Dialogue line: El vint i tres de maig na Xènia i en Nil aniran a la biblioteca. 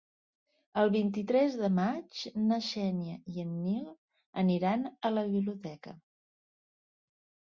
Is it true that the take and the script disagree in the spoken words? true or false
false